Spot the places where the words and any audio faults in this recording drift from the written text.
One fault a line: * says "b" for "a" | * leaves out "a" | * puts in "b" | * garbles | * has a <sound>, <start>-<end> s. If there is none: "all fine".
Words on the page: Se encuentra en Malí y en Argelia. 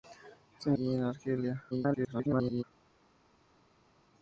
* leaves out "encuentra en Malí"
* garbles